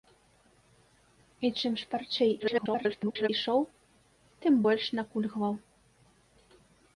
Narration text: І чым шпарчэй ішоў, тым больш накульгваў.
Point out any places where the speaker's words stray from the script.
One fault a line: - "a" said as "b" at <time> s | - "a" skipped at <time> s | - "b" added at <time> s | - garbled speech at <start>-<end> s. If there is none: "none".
- garbled speech at 2.4-3.3 s